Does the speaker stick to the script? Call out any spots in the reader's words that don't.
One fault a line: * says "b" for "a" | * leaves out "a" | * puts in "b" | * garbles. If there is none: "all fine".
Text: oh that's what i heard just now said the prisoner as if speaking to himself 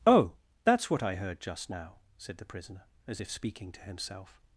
all fine